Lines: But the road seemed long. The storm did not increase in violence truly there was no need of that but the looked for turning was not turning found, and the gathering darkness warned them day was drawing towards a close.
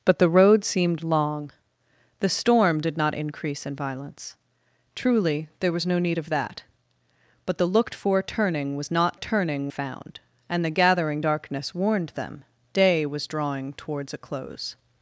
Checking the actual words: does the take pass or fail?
pass